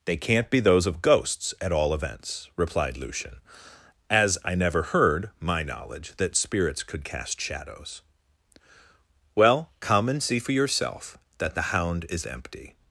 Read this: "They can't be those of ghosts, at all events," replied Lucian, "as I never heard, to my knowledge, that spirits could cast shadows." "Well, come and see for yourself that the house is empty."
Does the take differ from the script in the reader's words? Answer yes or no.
yes